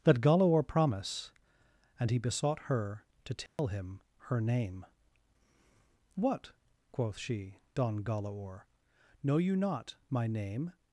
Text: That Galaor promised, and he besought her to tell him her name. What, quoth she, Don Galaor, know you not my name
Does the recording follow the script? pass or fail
fail